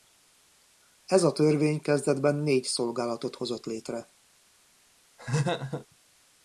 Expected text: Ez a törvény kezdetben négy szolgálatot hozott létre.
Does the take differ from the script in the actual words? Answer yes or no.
no